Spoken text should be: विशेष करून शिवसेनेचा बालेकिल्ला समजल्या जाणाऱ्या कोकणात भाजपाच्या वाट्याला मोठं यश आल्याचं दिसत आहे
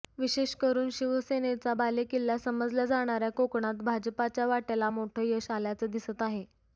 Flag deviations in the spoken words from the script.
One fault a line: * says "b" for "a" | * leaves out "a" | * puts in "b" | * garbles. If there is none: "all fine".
all fine